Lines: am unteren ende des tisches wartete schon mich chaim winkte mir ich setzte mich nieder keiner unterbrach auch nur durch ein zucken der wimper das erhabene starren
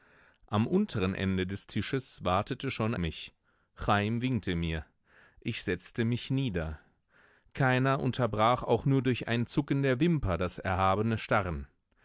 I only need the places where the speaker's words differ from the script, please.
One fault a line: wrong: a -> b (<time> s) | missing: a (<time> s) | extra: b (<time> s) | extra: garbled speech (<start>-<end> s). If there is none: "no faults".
no faults